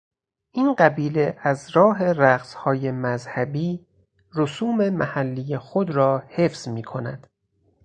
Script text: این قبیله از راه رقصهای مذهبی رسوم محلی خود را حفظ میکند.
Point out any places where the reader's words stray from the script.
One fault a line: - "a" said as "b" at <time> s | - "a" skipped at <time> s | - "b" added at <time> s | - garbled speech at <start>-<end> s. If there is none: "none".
none